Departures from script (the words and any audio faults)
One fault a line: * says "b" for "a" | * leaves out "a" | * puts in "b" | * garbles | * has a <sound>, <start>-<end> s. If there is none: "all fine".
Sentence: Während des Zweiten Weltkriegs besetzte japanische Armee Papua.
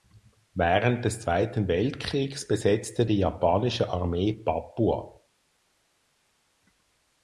* puts in "die"